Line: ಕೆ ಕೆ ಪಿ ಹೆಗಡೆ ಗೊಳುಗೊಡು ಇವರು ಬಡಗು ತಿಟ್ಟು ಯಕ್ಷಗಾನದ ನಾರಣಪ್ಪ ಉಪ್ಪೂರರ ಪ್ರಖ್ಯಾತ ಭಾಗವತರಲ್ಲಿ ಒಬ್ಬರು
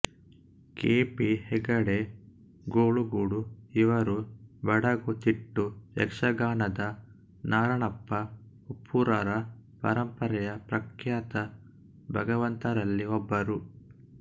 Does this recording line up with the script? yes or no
no